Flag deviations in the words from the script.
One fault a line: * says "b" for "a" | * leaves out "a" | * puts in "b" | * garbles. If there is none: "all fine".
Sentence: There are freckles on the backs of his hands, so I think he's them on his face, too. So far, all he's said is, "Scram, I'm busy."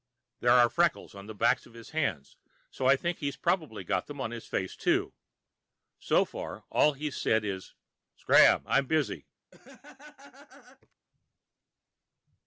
* puts in "probably got"